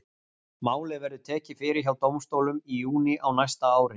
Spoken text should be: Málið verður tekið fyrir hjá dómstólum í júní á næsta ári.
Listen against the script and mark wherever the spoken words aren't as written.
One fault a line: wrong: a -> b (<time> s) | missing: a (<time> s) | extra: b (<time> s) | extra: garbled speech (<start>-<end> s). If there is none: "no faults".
no faults